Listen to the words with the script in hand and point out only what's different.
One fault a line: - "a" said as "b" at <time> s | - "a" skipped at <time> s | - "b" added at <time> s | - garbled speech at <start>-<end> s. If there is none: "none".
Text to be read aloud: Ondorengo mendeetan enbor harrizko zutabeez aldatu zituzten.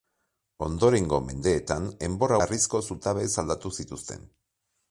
none